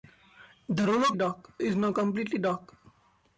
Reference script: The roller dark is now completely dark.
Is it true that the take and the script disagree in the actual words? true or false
false